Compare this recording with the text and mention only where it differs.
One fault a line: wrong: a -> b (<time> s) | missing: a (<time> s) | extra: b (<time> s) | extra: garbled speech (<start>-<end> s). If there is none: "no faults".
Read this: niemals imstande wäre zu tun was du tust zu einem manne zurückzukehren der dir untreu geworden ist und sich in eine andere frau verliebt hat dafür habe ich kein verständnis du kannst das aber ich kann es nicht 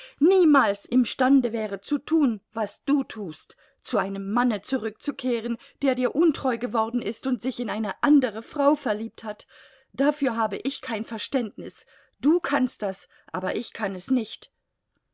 no faults